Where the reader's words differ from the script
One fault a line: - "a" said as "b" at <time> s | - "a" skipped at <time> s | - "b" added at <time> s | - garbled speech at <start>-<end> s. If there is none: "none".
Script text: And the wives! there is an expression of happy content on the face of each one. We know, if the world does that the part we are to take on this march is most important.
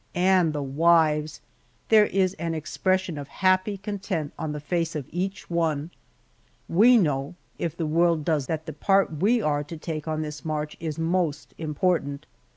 none